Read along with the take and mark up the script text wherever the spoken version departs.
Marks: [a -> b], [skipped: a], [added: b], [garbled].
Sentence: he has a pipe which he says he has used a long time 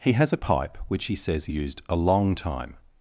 he has a pipe which he says he [skipped: has] used a long time